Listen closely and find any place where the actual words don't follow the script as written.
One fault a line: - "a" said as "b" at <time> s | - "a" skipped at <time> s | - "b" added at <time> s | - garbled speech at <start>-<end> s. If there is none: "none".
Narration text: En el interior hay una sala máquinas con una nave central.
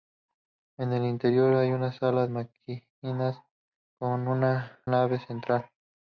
none